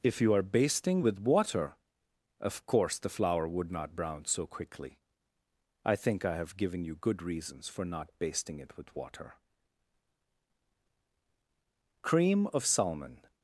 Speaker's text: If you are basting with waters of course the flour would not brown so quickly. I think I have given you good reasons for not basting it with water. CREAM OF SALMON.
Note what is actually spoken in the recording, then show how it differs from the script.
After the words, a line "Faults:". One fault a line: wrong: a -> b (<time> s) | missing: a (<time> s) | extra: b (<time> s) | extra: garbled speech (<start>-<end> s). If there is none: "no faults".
If you are basting with water of course the flour would not brown so quickly. I think I have given you good reasons for not basting it with water. CREAM OF SALMON.
Faults:
wrong: waters -> water (1.2 s)